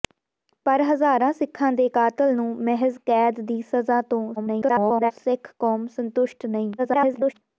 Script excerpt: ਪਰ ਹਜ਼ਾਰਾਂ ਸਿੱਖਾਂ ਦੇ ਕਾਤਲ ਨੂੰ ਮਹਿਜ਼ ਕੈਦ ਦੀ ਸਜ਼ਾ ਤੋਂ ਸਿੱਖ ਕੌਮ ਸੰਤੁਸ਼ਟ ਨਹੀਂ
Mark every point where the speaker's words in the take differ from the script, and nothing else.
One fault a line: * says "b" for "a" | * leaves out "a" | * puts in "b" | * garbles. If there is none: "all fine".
* garbles
* garbles